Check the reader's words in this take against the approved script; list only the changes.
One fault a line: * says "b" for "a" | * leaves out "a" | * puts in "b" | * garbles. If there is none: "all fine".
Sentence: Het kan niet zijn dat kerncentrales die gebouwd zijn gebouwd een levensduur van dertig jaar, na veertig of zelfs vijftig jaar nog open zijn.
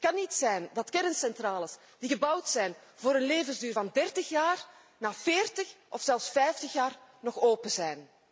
* says "voor" for "gebouwd"